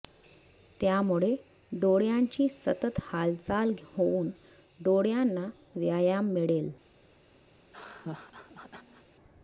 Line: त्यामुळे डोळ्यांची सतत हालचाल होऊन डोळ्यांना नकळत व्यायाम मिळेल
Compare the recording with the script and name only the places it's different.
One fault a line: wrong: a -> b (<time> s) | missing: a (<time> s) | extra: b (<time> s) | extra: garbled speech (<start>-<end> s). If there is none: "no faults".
missing: नकळत (5.5 s)